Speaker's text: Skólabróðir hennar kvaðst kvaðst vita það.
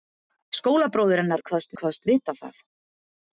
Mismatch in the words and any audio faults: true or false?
false